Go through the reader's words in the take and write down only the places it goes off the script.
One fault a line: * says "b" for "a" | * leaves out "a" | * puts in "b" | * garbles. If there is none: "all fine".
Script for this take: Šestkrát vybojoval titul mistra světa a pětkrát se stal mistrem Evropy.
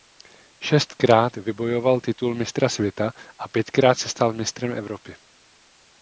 all fine